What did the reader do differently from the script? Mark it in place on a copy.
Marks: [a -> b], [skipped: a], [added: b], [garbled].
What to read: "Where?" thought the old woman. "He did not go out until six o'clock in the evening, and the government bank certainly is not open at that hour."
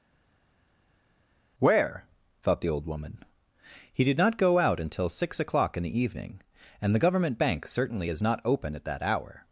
"Where?" thought the old woman. "He did not go out until six o'clock in the evening, and the government bank certainly is not open at that hour."